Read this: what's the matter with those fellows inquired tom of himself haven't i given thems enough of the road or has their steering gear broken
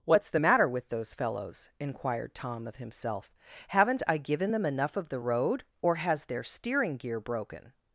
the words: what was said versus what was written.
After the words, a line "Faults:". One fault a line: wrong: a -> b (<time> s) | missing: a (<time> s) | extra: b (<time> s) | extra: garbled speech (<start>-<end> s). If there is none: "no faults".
what's the matter with those fellows inquired tom of himself haven't i given them enough of the road or has their steering gear broken
Faults:
wrong: thems -> them (4.5 s)